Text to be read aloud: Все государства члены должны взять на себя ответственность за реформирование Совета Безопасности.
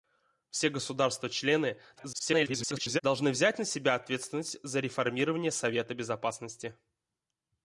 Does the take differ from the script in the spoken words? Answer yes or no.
yes